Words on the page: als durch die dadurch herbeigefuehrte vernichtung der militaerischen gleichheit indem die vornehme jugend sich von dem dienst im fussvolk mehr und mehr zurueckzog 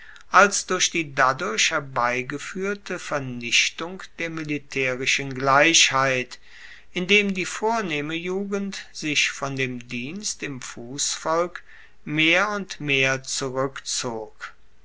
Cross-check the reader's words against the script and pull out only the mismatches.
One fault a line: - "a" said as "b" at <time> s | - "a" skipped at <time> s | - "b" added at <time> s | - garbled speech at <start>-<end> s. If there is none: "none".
none